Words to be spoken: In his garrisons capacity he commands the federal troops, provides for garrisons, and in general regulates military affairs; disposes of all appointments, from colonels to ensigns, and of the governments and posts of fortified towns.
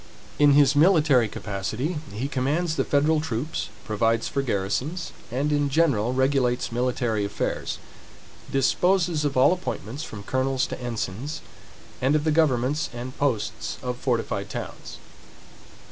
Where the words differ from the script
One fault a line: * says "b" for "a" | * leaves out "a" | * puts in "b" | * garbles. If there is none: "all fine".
* says "military" for "garrisons"